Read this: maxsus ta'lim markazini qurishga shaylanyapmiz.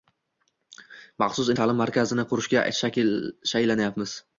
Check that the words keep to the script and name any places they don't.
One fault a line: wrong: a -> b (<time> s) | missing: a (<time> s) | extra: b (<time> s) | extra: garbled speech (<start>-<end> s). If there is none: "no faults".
no faults